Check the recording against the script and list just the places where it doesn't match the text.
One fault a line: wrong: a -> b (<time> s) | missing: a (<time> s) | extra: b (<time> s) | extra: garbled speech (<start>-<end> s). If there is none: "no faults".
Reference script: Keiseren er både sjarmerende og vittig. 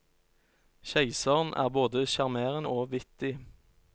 no faults